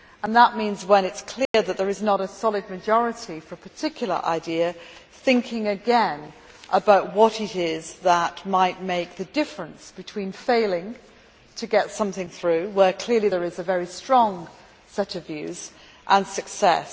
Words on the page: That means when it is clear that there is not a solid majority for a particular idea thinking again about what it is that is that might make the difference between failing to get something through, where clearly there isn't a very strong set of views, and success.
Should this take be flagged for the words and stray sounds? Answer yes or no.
yes